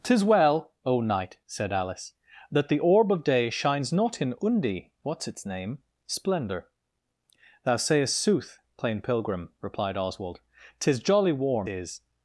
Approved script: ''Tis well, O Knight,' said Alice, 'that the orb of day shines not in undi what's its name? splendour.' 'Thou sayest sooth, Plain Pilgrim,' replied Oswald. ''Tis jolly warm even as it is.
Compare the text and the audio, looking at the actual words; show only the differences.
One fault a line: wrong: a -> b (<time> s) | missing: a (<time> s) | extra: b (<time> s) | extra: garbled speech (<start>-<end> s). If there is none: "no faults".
missing: even as it (11.7 s)